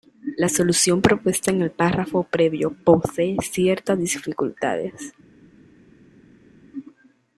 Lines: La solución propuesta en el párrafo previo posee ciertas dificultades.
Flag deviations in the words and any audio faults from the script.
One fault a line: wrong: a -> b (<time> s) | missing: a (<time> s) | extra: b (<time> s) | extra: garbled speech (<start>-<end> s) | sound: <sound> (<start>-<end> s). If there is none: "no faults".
no faults